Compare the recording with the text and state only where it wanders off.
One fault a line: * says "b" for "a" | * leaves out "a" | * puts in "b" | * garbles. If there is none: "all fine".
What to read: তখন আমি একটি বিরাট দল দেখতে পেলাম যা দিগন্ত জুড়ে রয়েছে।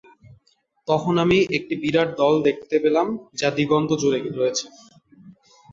all fine